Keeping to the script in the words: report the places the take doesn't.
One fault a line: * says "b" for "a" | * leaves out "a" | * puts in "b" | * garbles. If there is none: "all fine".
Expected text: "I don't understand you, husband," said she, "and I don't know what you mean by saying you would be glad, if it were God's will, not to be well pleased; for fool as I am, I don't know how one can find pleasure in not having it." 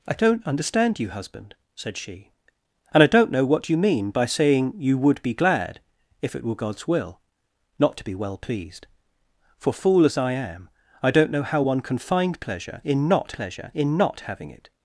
* puts in "pleasure in not"